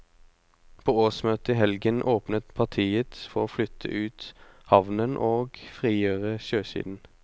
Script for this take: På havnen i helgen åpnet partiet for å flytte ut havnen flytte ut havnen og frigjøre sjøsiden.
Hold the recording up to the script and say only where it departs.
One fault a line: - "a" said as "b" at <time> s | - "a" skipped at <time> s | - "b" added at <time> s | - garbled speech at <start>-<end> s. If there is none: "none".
- "havnen" said as "årsmøtet" at 1.0 s
- "flytte ut havnen" skipped at 5.2 s